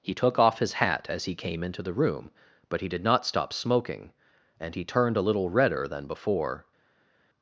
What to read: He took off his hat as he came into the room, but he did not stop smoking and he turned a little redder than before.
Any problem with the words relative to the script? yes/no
no